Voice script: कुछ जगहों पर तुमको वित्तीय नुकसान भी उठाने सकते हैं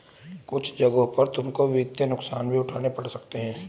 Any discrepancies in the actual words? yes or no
yes